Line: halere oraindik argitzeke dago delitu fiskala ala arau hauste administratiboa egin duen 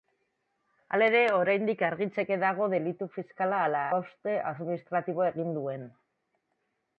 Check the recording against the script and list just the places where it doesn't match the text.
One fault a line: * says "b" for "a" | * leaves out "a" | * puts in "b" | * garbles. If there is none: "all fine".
* leaves out "arau"